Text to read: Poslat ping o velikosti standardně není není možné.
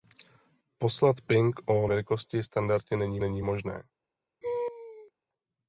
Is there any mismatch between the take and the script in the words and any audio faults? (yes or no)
yes